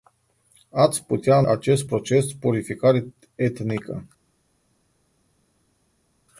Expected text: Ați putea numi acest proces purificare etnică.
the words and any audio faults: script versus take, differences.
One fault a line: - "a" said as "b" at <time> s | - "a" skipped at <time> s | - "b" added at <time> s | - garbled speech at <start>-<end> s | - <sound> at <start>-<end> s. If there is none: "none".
- "numi" skipped at 1.4 s